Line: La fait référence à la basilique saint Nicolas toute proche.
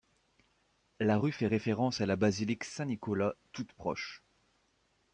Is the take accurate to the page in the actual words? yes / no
no